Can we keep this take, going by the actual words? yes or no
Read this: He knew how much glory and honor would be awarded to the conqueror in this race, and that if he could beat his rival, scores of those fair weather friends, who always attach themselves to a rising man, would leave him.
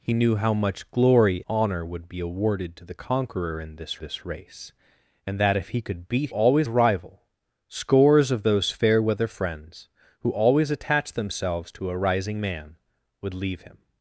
no